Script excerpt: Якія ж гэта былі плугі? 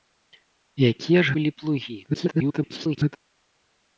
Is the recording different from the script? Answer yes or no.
yes